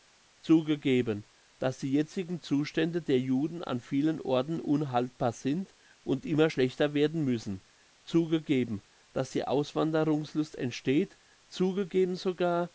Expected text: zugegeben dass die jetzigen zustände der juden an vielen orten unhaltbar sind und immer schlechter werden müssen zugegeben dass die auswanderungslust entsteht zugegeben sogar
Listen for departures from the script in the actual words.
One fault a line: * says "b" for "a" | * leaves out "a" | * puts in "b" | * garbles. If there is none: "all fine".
all fine